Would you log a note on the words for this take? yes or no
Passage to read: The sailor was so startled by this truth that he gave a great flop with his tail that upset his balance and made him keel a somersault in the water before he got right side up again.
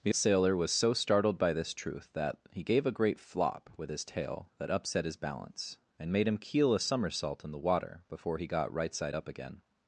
no